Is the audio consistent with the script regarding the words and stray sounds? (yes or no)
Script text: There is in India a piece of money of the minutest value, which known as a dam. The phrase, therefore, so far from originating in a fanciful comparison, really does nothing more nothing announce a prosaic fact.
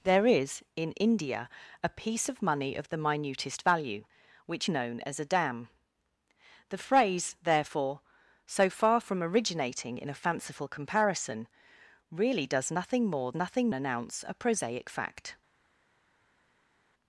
yes